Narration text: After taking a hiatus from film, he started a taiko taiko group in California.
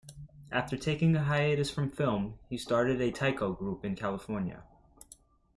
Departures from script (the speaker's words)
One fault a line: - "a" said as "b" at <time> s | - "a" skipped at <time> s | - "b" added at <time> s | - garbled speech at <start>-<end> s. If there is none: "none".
- "taiko" skipped at 3.5 s